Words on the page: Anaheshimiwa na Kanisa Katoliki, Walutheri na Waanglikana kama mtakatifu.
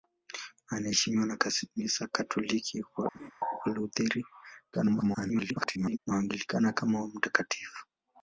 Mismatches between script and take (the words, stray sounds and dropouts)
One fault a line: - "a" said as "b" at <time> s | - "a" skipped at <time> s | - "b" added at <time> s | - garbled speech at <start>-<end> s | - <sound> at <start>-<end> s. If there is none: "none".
- laugh at 3.1-3.3 s
- garbled speech at 4.7-6.0 s